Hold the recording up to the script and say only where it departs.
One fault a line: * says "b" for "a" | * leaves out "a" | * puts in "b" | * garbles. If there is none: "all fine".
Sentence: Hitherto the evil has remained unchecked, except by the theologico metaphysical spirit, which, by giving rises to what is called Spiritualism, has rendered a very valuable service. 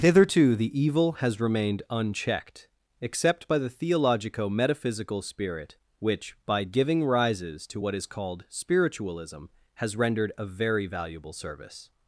all fine